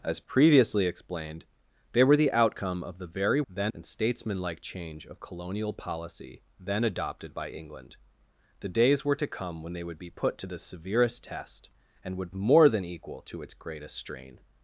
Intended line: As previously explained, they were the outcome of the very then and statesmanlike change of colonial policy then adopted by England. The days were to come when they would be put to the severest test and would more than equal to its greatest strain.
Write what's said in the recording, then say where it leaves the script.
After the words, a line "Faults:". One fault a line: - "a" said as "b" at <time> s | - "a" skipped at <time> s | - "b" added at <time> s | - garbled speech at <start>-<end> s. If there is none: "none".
As previously explained, they were the outcome of the very then and statesmanlike change of colonial policy then adopted by England. The days were to come when they would be put to the severest test and would more than equal to its greatest strain.
Faults:
none